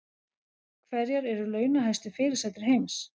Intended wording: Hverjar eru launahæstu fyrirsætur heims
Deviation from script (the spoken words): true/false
false